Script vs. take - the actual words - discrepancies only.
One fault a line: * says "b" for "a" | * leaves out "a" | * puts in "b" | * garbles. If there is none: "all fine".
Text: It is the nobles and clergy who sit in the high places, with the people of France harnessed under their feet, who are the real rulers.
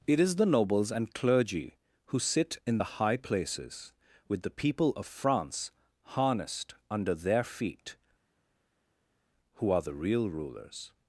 all fine